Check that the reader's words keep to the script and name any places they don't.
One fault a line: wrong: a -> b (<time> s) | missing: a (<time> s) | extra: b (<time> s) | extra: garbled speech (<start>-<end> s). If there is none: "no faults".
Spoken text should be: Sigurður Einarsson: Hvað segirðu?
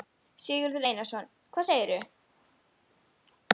no faults